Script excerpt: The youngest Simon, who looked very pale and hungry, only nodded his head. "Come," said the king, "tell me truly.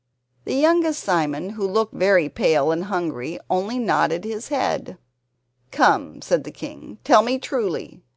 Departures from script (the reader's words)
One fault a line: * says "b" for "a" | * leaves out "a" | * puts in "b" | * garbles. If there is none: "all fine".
all fine